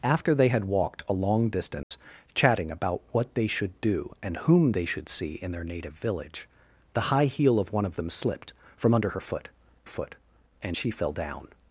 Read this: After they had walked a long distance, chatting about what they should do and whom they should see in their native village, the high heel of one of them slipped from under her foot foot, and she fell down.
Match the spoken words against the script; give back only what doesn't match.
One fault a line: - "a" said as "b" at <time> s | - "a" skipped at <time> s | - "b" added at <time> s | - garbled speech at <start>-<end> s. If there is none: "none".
none